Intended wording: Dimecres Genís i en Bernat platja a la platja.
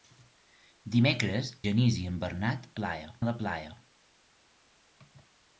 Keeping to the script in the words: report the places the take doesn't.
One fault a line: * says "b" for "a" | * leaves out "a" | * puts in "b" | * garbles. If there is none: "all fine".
all fine